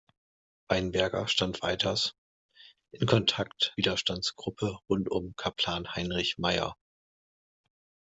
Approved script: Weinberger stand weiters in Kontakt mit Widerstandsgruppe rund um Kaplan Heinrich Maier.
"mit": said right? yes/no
no